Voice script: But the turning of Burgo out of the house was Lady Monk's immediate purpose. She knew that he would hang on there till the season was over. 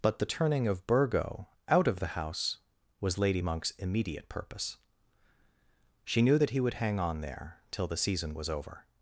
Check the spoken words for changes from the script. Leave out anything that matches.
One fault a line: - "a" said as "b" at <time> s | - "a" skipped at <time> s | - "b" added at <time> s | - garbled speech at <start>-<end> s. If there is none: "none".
none